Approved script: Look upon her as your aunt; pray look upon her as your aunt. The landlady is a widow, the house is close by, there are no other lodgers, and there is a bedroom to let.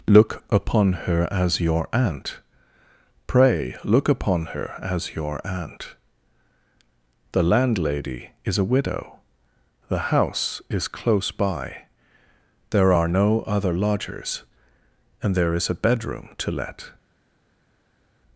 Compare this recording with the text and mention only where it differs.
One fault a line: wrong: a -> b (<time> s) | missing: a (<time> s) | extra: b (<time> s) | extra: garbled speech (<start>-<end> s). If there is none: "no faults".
no faults